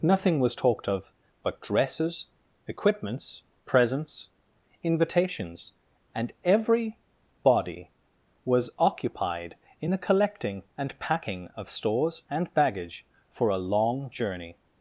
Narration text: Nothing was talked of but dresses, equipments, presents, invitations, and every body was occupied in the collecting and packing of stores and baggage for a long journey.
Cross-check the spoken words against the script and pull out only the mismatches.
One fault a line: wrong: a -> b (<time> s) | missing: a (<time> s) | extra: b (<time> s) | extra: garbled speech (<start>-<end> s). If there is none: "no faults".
no faults